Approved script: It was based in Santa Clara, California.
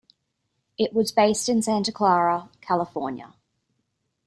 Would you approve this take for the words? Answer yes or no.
yes